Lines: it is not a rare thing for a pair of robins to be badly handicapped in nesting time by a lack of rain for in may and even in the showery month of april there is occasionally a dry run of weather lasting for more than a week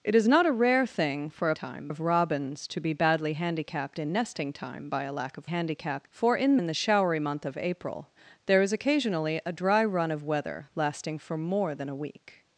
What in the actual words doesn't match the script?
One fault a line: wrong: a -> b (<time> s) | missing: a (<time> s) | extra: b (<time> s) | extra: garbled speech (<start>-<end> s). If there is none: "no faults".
wrong: pair -> time (1.5 s)
wrong: rain -> handicapped (5.4 s)
missing: may and even (6.6 s)